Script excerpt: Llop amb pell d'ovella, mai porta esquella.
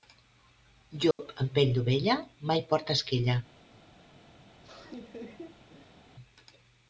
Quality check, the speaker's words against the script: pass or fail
pass